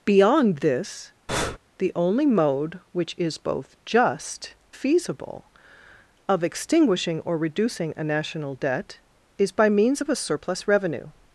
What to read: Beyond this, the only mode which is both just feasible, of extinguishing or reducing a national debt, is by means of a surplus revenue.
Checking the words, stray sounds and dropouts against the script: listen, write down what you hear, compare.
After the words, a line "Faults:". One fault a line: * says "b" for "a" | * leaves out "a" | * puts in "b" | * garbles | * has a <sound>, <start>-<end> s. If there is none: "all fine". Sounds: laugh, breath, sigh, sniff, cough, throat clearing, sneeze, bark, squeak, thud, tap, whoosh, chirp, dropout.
Beyond this, the only mode which is both just feasible, of extinguishing or reducing a national debt, is by means of a surplus revenue.
Faults:
* has a breath, 1.3-1.6 s